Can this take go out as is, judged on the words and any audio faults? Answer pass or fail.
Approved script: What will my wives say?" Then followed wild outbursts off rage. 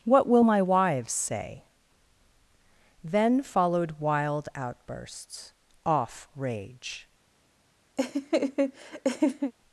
fail